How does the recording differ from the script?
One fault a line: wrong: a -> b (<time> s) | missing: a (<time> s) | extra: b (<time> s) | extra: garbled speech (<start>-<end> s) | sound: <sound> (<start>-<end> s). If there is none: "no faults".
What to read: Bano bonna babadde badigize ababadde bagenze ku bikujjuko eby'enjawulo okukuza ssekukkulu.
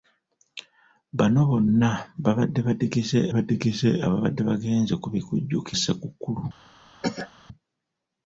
extra: badigize (3.3 s)
missing: eby'enjawulo okukuza (5.7 s)
sound: cough (7.0-7.3 s)